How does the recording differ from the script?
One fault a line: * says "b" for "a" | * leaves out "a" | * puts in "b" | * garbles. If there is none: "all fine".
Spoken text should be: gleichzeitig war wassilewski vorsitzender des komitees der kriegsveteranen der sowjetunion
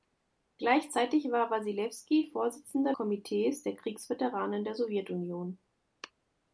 * leaves out "des"